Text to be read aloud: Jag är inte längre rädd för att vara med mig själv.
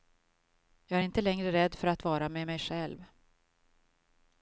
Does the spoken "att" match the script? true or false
true